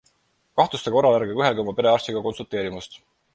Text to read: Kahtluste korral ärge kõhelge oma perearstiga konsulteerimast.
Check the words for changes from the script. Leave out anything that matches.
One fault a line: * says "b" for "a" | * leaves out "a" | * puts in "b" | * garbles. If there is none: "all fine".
all fine